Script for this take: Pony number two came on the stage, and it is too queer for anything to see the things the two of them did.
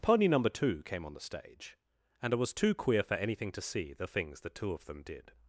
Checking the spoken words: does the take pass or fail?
fail